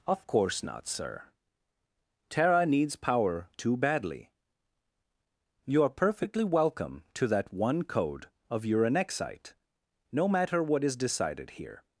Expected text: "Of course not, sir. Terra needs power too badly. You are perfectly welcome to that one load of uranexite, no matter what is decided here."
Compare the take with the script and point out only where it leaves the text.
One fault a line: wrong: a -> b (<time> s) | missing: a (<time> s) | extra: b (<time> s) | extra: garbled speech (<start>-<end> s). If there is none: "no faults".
wrong: load -> code (7.8 s)